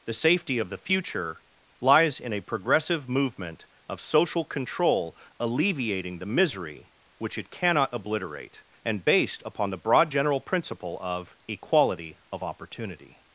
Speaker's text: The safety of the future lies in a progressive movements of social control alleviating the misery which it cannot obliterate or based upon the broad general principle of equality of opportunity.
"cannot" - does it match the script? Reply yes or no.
yes